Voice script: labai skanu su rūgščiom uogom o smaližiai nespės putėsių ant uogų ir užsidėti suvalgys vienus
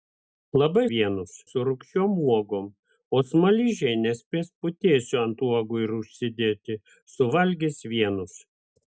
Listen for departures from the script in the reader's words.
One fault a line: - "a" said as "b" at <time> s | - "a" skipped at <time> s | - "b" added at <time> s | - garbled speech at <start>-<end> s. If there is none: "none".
- "skanu" said as "vienus" at 1.0 s